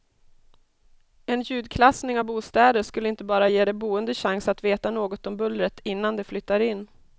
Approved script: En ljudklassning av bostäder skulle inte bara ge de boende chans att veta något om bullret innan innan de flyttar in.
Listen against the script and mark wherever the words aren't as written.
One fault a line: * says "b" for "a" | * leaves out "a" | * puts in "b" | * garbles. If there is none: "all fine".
* leaves out "innan"